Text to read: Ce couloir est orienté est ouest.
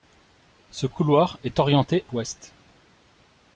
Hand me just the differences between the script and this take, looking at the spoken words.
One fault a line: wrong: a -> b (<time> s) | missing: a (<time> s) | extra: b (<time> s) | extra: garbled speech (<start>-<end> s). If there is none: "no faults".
missing: est (2.0 s)